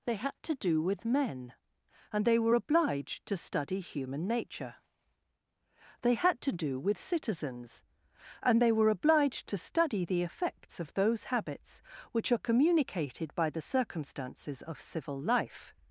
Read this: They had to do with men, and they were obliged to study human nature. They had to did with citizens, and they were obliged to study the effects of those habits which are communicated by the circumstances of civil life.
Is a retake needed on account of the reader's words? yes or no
yes